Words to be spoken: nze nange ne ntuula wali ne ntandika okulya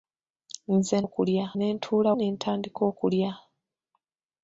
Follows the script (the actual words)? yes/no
no